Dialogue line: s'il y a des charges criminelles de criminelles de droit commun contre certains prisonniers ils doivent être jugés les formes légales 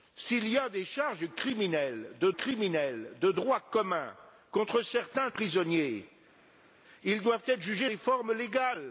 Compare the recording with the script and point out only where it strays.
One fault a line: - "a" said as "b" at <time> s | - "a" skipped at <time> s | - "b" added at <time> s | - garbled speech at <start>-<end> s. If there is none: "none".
none